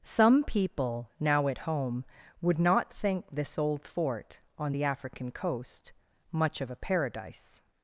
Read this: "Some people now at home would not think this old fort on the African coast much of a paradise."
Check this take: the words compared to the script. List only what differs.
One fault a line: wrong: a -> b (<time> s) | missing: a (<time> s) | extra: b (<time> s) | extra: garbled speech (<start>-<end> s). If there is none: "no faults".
no faults